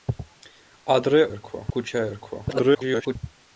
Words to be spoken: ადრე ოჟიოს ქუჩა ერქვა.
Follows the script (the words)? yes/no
no